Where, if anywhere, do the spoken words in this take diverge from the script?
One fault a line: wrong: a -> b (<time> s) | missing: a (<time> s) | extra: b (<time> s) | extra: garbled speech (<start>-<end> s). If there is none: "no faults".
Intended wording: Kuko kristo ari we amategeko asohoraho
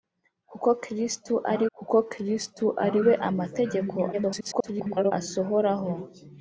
extra: kuko kristo ari (1.8 s)
extra: garbled speech (4.1-5.1 s)